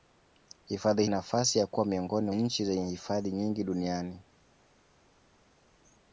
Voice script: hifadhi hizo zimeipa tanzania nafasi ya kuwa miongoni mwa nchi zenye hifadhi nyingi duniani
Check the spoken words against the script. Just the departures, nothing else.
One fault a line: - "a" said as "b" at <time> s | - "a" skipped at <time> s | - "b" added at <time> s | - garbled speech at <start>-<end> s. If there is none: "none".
- "hizo zimeipa tanzania" skipped at 1.1 s
- "mwa" skipped at 2.3 s